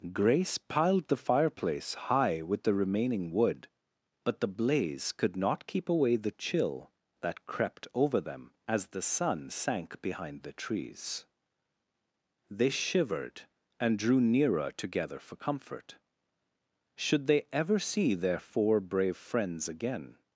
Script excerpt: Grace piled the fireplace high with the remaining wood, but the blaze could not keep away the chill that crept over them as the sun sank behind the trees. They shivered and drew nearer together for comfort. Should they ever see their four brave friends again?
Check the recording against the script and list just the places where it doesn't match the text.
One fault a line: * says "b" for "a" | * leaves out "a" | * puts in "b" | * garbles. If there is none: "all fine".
all fine